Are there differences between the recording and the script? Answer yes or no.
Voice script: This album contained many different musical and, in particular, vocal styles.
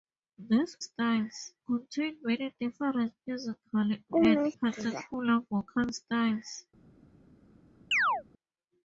yes